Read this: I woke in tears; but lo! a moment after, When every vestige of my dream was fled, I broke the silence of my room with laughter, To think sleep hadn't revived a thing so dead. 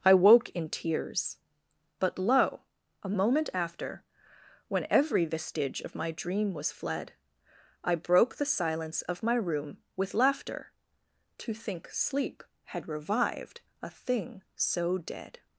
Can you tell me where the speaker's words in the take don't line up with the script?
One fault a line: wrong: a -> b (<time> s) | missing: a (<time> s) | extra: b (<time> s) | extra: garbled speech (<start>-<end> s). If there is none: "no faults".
wrong: hadn't -> had (12.7 s)